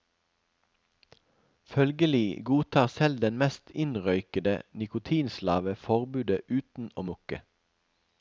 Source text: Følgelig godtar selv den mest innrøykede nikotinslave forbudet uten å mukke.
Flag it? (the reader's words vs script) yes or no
no